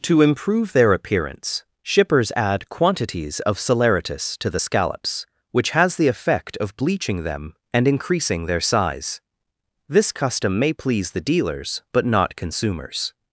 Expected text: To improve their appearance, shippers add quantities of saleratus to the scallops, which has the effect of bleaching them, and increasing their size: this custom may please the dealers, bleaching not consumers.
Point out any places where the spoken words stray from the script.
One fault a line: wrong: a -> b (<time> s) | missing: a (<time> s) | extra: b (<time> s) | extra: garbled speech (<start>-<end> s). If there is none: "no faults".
wrong: bleaching -> but (11.9 s)